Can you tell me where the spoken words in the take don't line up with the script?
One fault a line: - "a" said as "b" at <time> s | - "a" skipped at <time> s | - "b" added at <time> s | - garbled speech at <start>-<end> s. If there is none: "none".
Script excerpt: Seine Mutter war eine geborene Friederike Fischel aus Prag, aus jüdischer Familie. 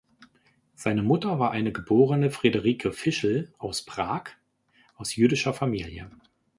none